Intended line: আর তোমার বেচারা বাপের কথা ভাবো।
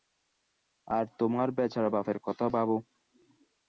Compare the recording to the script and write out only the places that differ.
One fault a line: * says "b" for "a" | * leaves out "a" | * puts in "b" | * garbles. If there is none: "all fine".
all fine